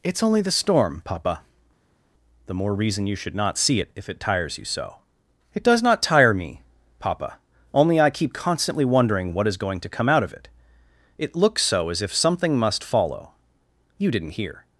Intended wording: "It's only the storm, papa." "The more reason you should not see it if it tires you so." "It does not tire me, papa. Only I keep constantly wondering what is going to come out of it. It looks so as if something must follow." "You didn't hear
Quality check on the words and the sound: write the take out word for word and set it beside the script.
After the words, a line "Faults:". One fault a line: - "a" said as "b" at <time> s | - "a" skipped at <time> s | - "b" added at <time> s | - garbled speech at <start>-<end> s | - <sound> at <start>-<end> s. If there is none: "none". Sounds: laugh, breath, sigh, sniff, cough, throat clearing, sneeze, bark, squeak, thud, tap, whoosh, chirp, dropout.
"It's only the storm, papa." "The more reason you should not see it if it tires you so." "It does not tire me, papa. Only I keep constantly wondering what is going to come out of it. It looks so as if something must follow." "You didn't hear
Faults:
none